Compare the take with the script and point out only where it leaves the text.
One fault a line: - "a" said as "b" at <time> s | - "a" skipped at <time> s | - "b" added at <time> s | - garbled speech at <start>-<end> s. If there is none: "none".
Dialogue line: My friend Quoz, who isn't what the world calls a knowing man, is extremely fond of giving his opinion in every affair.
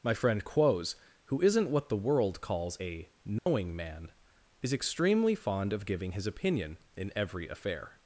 none